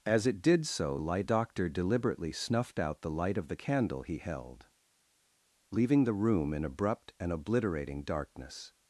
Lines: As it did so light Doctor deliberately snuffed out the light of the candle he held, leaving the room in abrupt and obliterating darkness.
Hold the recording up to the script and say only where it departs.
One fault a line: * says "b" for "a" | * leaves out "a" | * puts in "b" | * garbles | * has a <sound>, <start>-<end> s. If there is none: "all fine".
all fine